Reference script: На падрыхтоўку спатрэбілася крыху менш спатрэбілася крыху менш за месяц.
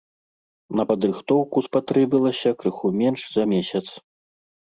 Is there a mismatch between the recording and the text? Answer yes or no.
yes